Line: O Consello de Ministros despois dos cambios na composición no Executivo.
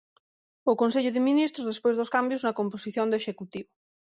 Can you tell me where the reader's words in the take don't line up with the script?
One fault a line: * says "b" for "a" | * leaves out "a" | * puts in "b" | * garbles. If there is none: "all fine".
* says "do" for "no"